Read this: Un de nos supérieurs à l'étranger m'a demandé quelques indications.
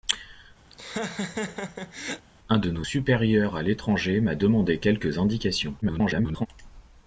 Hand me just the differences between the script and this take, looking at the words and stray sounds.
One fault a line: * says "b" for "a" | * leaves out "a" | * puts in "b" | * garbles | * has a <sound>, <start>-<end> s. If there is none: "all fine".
* has a laugh, 0.7-2.3 s
* garbles